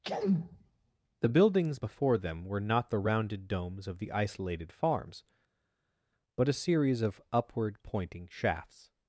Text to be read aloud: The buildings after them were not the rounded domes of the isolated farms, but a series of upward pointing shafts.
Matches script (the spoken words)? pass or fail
fail